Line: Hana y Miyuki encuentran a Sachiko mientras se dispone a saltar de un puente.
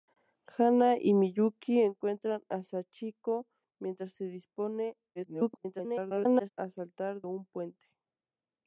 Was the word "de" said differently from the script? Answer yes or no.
yes